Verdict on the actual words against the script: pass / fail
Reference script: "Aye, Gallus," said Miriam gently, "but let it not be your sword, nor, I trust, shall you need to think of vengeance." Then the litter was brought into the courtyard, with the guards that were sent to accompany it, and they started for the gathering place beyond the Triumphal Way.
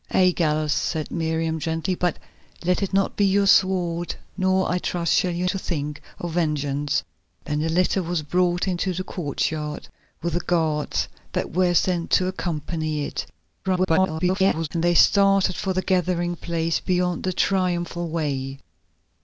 fail